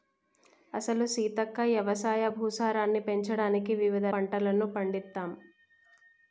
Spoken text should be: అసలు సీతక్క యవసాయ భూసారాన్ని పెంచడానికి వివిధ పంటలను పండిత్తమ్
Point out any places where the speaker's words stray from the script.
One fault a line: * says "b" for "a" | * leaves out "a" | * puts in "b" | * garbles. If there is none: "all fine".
all fine